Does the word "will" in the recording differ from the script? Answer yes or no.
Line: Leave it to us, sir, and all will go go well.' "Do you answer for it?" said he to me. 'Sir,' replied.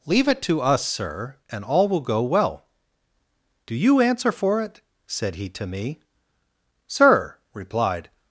no